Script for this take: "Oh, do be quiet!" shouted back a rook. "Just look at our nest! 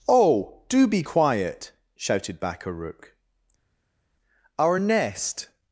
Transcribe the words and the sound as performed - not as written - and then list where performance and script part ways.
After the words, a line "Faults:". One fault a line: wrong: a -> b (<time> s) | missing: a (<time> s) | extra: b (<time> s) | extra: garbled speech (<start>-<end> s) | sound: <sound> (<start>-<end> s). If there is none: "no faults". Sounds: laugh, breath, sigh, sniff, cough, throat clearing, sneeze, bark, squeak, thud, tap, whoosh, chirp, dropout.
"Oh, do be quiet!" shouted back a rook. "our nest!
Faults:
missing: Just look at (3.2 s)